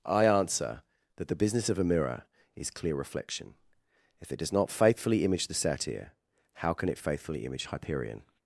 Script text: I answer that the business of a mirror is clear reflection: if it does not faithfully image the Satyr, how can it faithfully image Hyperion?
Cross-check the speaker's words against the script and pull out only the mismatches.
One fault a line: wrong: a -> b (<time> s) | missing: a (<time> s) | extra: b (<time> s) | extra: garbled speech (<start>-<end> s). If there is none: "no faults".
no faults